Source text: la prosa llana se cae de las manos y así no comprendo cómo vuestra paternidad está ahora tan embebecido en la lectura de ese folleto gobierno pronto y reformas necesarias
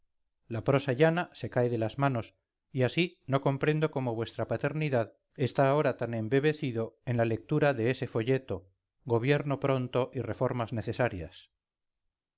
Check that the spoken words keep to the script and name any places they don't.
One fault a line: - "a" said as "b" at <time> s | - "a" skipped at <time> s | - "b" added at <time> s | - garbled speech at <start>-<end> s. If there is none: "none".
none